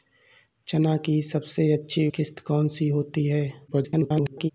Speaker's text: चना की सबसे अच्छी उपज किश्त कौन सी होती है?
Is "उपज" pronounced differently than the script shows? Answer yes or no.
yes